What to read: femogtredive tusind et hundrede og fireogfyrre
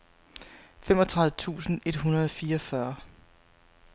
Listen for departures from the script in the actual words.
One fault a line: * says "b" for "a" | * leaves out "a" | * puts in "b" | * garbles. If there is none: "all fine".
all fine